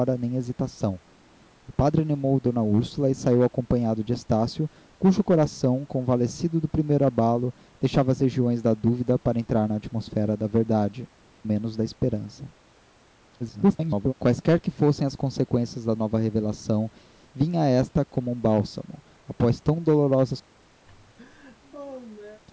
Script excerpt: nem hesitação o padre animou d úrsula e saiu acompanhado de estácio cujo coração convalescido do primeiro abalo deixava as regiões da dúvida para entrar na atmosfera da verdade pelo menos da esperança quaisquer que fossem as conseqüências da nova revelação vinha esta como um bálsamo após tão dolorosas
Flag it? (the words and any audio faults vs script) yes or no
yes